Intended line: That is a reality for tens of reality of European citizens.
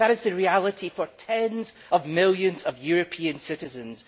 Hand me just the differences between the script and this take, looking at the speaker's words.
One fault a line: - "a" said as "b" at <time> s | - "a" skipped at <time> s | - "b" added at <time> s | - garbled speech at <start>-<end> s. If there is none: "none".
- "a" said as "the" at 0.2 s
- "reality" said as "millions" at 2.0 s